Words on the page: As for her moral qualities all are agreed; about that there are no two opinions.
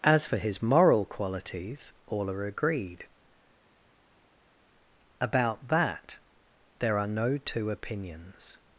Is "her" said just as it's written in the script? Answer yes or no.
no